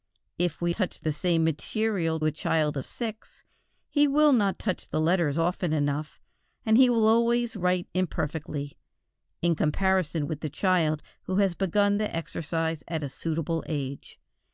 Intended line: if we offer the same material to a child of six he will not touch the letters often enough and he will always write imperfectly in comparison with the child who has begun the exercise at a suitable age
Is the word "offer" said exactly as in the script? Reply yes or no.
no